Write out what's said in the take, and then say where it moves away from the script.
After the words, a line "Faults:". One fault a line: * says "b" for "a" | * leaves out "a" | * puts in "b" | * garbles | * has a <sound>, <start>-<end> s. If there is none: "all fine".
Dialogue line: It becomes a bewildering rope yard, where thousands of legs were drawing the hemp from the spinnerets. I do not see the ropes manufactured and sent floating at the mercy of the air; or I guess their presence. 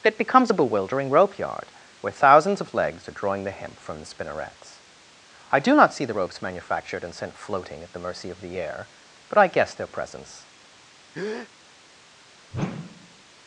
It becomes a bewildering rope yard, where thousands of legs are drawing the hemp from the spinnerets. I do not see the ropes manufactured and sent floating at the mercy of the air; but I guess their presence.
Faults:
* says "are" for "were"
* says "but" for "or"
* has a breath, 11.1-11.5 s
* has a whoosh, 12.5-13.2 s